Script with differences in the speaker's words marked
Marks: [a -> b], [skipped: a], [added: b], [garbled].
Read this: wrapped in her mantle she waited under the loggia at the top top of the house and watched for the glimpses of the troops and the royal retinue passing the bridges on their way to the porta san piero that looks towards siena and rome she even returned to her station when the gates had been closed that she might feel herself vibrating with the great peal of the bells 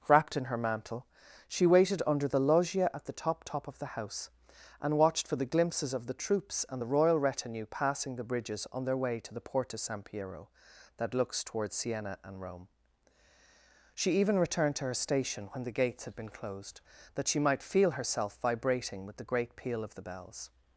wrapped in her mantle she waited under the loggia at the top top of the house and watched for the glimpses of the troops and the royal retinue passing the bridges on their way to the porta san piero that looks towards siena and rome she even returned to her station when the gates had been closed that she might feel herself vibrating with the great peal of the bells